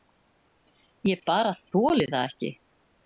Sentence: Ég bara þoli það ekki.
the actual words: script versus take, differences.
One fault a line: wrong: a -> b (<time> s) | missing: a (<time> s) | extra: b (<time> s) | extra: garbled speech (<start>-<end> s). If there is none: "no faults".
no faults